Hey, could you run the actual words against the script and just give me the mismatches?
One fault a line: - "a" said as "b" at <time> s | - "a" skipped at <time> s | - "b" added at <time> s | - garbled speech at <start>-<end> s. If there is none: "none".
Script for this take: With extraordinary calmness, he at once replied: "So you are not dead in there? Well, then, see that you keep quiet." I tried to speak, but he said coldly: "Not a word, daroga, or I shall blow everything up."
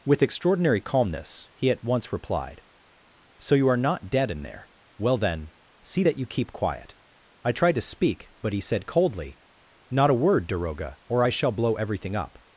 none